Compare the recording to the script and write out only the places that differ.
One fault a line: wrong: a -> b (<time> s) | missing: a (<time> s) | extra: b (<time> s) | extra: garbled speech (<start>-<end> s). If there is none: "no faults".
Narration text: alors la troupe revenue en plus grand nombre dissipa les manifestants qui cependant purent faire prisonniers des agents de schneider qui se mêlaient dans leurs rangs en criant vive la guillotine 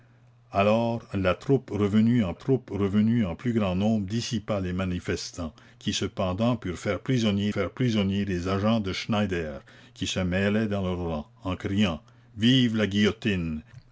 extra: troupe revenue en (2.3 s)
extra: faire prisonniers (7.5 s)